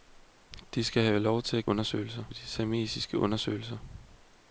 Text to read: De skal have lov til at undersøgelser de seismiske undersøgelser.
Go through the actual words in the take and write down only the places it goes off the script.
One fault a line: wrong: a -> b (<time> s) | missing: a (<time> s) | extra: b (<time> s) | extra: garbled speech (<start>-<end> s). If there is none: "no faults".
no faults